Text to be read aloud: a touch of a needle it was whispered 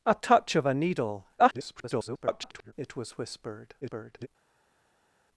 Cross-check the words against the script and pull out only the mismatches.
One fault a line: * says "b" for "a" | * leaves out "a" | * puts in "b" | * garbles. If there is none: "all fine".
* garbles
* garbles